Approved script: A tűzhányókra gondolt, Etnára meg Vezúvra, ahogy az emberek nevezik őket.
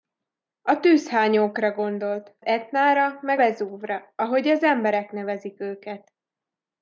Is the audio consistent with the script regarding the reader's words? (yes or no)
yes